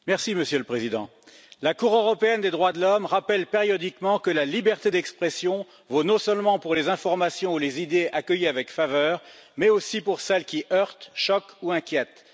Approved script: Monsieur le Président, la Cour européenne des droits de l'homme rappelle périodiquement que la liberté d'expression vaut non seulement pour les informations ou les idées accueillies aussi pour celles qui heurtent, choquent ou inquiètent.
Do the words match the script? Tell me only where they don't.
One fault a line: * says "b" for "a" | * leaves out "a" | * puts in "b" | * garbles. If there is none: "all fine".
* puts in "avec faveur mais"